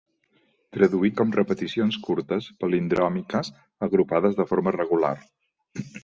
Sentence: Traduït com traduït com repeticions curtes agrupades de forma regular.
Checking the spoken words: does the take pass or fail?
fail